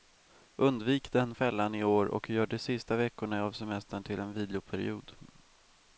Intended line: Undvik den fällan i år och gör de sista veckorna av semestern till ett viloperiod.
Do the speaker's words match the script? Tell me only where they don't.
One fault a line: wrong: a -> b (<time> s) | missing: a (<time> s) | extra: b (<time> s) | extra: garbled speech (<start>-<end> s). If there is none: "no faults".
wrong: ett -> en (4.2 s)